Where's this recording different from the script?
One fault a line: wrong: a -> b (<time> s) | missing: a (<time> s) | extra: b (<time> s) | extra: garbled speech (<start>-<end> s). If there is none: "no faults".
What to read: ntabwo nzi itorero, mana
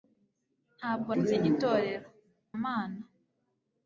no faults